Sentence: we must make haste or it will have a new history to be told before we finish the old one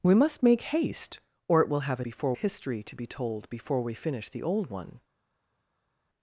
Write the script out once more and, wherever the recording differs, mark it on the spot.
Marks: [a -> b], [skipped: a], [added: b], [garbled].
we must make haste or it will have a [new -> before] history to be told before we finish the old one